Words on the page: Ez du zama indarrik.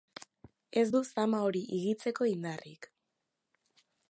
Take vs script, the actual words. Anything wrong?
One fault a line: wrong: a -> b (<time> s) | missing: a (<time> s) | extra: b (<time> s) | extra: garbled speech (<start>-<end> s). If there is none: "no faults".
extra: hori higitzeko (1.5 s)